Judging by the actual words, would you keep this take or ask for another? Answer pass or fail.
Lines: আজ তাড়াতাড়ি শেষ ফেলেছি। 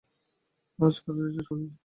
pass